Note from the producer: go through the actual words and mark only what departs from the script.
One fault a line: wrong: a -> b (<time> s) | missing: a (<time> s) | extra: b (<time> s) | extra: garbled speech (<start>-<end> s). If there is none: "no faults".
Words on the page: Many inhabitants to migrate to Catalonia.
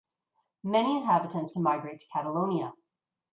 no faults